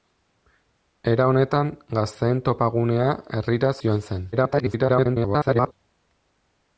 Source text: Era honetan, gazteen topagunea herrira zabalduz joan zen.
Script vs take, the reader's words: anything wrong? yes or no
yes